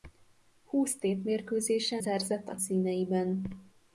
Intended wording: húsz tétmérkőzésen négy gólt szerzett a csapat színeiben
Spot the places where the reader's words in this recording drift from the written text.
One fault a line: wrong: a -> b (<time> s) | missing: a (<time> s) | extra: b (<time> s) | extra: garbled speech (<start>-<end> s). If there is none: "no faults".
missing: négy gólt (2.0 s)
missing: csapat (2.6 s)